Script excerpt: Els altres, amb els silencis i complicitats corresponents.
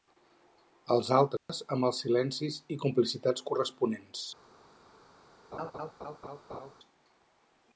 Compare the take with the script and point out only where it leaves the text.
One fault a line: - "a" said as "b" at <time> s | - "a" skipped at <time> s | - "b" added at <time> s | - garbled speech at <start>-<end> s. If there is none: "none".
none